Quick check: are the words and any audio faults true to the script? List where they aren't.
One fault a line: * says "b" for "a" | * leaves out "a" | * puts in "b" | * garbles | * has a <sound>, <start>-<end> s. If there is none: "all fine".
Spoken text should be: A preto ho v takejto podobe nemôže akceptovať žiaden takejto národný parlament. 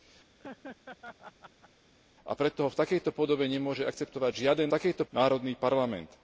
* has a laugh, 0.4-1.7 s